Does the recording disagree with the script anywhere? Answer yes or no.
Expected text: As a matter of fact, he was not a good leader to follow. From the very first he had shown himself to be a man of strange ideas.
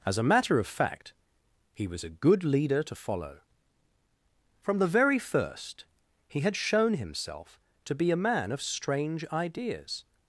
yes